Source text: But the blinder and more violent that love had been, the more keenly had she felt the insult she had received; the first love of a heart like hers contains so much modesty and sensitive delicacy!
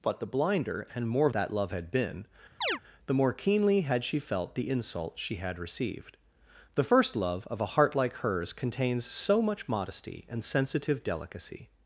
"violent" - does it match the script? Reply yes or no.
no